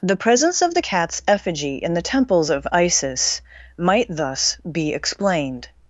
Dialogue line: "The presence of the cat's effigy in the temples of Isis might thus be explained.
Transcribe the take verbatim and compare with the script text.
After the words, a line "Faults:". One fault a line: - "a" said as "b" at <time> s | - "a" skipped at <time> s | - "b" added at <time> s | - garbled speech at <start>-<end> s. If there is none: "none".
"The presence of the cat's effigy in the temples of Isis might thus be explained.
Faults:
none